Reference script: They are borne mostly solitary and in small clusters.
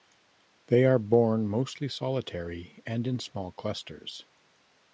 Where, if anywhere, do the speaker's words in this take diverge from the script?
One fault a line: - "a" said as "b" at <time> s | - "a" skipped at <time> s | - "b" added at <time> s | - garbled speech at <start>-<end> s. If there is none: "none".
none